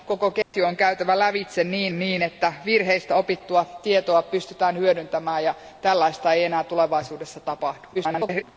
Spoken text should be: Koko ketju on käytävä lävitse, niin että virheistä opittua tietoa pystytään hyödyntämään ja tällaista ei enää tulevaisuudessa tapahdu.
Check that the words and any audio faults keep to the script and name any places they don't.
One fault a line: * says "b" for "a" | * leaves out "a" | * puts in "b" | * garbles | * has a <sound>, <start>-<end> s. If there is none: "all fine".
* has a dropout, 0.4-0.5 s
* puts in "niin"
* garbles